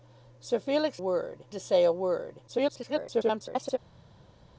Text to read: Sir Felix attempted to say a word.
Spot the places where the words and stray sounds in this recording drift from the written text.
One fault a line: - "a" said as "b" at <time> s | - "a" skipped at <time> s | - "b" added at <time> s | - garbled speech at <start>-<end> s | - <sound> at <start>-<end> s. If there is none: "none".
- "attempted" said as "word" at 1.0 s
- garbled speech at 2.5-3.8 s